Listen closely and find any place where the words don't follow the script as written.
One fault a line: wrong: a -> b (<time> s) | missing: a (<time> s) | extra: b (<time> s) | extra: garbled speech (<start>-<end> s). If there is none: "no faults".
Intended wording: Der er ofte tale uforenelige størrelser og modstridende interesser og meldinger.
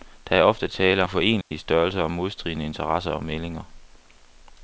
no faults